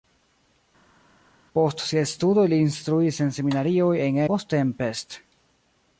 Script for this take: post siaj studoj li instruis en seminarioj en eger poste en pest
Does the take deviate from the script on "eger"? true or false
true